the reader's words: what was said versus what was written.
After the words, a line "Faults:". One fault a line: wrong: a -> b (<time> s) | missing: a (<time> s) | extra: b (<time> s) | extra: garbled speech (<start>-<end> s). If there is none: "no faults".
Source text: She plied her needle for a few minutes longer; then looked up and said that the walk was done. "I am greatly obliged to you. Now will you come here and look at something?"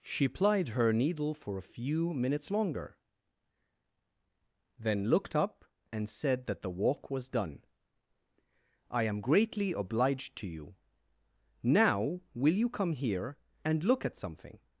She plied her needle for a few minutes longer; then looked up and said that the walk was done. "I am greatly obliged to you. Now will you come here and look at something?"
Faults:
no faults